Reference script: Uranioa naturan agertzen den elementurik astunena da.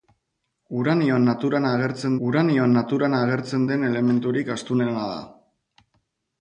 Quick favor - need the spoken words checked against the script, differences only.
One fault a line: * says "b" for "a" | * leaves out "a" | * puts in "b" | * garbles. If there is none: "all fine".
* puts in "uranioa naturan agertzen"